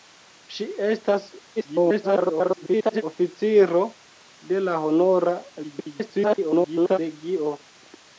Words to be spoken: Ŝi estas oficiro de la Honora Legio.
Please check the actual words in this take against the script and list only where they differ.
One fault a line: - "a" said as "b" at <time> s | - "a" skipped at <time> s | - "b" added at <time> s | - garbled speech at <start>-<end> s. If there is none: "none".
- garbled speech at 1.6-3.0 s
- garbled speech at 5.6-7.0 s